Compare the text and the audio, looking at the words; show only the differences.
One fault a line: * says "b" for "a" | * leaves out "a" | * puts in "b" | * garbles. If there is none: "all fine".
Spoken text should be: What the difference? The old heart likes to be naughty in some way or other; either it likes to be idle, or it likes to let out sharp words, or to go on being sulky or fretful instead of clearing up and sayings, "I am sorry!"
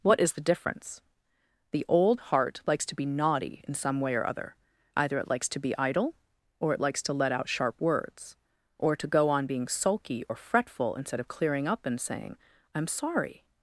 * puts in "is"
* says "saying" for "sayings"